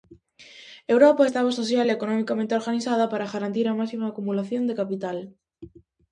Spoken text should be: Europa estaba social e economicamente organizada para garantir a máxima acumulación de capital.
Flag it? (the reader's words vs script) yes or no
no